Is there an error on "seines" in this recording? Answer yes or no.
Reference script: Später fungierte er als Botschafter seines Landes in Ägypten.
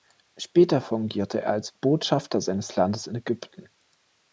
no